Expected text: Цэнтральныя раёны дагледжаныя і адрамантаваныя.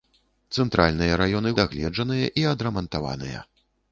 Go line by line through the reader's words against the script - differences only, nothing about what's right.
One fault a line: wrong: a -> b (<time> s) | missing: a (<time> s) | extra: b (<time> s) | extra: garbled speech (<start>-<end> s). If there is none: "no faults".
no faults